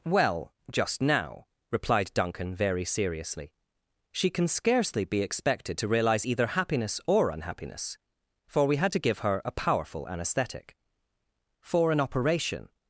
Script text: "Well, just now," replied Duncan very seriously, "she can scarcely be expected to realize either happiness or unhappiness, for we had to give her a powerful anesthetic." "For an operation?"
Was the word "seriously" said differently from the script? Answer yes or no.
no